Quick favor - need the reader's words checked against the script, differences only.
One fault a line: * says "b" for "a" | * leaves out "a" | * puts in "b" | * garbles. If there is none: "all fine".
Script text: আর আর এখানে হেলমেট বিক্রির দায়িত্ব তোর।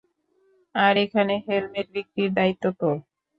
* leaves out "আর"